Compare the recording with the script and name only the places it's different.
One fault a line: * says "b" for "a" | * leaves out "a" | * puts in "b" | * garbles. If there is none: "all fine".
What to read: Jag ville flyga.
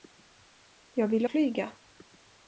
all fine